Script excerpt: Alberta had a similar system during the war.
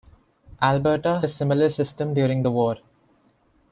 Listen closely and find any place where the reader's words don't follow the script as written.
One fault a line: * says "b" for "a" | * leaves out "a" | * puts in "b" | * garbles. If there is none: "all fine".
* leaves out "had"